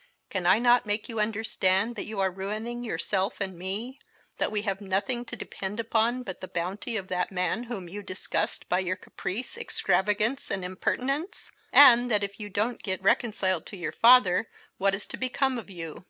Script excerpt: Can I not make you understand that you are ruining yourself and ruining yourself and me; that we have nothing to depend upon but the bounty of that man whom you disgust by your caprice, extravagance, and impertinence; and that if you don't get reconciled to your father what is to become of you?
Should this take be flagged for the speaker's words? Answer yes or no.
yes